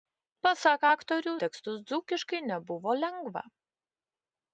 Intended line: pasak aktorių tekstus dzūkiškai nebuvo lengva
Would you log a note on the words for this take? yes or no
no